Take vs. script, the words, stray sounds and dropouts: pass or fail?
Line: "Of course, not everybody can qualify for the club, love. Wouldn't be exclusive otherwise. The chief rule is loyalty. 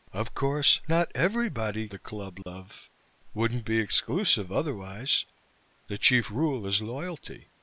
fail